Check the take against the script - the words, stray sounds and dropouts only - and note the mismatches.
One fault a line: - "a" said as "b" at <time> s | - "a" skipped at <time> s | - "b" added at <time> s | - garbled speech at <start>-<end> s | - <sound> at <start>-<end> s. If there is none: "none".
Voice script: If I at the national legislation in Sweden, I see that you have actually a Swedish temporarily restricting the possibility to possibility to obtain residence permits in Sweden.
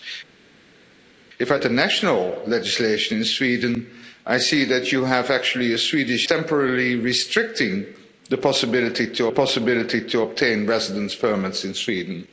none